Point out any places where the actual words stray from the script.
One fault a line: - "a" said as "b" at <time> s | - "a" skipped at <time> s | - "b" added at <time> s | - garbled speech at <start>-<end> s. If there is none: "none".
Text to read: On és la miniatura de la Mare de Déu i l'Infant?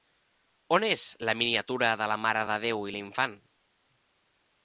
none